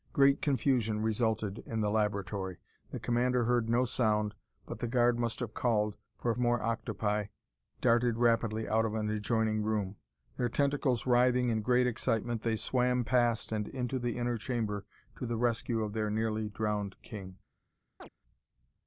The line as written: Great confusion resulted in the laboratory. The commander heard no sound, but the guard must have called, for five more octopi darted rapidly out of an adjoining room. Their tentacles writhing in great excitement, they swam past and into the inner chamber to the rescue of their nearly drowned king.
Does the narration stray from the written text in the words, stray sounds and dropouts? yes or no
yes